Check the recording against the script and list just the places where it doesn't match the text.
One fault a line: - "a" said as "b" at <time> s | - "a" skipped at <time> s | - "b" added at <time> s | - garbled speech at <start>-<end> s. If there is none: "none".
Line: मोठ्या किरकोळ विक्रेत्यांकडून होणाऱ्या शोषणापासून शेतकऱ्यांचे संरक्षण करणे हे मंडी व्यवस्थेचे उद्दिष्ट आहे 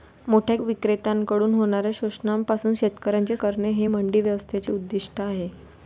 - "किरकोळ" skipped at 0.6 s
- "संरक्षण" skipped at 3.4 s